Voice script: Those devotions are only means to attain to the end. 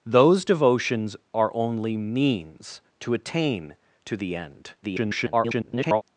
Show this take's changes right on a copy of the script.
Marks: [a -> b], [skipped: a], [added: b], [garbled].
Those devotions are only means to attain to the end. [garbled]